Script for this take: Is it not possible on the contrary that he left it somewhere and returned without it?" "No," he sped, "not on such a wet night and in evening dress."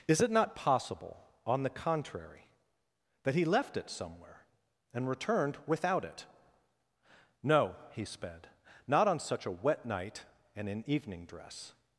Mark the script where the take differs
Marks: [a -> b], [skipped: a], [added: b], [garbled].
Is it not possible on the contrary that he left it somewhere and returned without it?" "No," he sped, "not on such a wet night and in evening dress."